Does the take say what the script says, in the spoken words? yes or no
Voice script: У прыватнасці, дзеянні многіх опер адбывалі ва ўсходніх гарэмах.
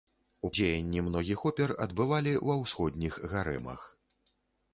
no